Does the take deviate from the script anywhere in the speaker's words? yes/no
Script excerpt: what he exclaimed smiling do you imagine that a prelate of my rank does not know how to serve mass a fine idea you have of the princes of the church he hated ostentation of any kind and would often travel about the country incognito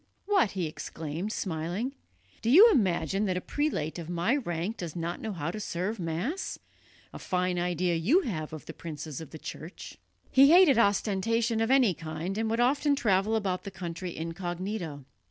no